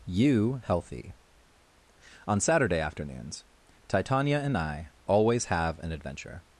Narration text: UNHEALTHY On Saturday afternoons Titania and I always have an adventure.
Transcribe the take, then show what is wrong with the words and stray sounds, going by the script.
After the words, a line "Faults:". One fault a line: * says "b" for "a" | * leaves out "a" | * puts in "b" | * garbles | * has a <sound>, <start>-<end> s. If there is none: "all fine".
You healthy On Saturday afternoons Titania and I always have an adventure.
Faults:
* says "You healthy" for "UNHEALTHY"